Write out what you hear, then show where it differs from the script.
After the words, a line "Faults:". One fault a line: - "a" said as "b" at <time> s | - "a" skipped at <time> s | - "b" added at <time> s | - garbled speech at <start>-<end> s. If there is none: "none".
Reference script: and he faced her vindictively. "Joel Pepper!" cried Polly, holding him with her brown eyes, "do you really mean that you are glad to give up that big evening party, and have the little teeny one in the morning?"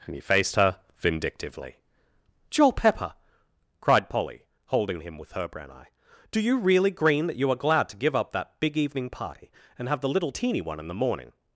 and he faced her vindictively. "Joel Pepper!" cried Polly, holding him with her brown eye, "do you really green that you are glad to give up that big evening party, and have the little teeny one in the morning?"
Faults:
- "eyes" said as "eye" at 5.7 s
- "mean" said as "green" at 6.9 s